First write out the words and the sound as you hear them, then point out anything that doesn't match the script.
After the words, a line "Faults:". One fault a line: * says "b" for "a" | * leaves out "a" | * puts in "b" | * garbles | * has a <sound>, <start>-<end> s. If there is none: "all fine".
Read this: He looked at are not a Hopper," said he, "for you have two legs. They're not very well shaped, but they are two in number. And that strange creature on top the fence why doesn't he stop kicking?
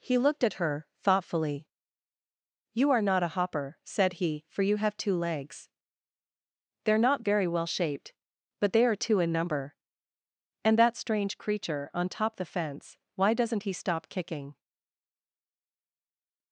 He looked at her thoughtfully. "You are not a Hopper," said he, "for you have two legs. They're not very well shaped, but they are two in number. And that strange creature on top the fence why doesn't he stop kicking?
Faults:
* puts in "her thoughtfully You"